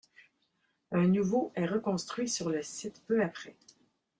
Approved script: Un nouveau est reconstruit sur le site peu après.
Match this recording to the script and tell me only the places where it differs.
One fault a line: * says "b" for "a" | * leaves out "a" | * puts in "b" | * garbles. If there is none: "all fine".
all fine